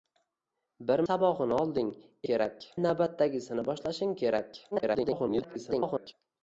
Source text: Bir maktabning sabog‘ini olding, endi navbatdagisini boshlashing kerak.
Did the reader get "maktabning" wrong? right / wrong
wrong